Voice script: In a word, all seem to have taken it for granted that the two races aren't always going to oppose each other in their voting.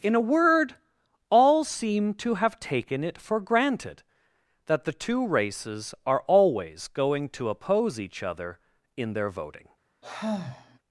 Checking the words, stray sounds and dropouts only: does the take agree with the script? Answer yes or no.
no